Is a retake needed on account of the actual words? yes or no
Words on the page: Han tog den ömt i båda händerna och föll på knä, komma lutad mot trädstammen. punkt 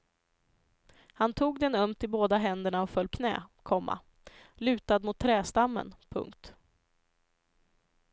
yes